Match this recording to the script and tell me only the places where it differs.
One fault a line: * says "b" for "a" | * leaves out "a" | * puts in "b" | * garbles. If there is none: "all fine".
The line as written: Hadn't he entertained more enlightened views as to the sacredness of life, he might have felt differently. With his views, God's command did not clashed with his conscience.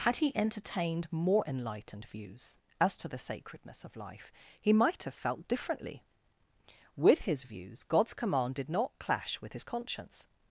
* says "Had" for "Hadn't"
* says "clash" for "clashed"